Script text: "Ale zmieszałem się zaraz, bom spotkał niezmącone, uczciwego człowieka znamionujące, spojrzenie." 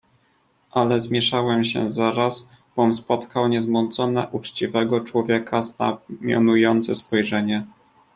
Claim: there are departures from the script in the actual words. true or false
false